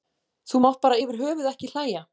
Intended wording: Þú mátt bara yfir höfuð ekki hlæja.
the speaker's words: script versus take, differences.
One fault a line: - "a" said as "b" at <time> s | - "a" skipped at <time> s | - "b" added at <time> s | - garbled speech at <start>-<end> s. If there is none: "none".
none